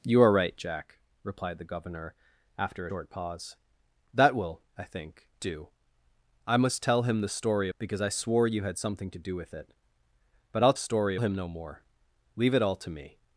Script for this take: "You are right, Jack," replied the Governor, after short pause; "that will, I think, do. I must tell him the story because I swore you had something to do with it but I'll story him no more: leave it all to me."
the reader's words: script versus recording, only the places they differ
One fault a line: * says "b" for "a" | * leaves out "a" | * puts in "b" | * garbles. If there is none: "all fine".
all fine